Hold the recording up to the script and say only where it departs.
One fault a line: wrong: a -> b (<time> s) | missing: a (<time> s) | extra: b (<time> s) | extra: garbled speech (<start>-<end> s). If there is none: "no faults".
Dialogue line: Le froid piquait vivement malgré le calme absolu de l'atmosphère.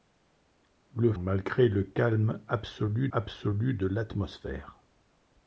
missing: froid piquait vivement (1.1 s)
extra: absolu (3.1 s)